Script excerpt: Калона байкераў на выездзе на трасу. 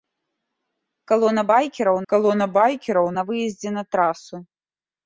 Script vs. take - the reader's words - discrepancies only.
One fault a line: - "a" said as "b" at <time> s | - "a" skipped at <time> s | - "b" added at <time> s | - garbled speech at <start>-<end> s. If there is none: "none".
- "калона байкераў" added at 2.1 s